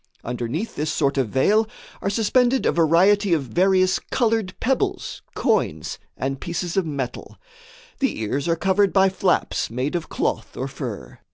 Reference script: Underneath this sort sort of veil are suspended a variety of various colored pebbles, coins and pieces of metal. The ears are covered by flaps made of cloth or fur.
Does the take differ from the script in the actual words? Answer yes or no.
yes